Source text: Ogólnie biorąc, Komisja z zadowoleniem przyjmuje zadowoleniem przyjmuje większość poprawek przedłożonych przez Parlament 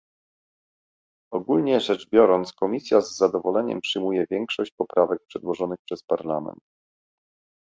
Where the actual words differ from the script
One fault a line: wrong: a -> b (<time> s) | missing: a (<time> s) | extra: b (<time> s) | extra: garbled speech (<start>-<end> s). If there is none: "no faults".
extra: rzecz (1.8 s)
missing: zadowoleniem przyjmuje (4.2 s)